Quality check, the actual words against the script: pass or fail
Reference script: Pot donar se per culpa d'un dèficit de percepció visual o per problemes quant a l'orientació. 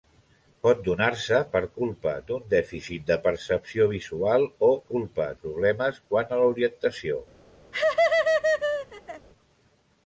fail